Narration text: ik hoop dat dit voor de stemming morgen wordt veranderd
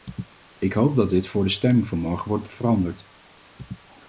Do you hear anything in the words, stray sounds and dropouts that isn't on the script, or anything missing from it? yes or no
yes